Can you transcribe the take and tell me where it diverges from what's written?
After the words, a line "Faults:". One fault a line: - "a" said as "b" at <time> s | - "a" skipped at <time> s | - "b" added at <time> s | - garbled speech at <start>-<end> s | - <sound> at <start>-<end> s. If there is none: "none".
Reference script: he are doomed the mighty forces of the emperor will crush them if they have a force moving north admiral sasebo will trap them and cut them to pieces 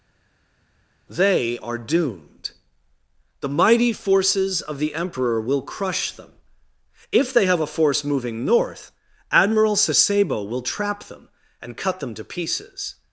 they are doomed the mighty forces of the emperor will crush them if they have a force moving north admiral sasebo will trap them and cut them to pieces
Faults:
- "he" said as "they" at 1.1 s